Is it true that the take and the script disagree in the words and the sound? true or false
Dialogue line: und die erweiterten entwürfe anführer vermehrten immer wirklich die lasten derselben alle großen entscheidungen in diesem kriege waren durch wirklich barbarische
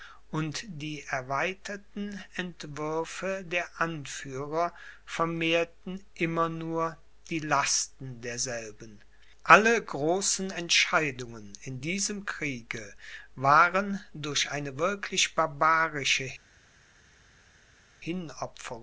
true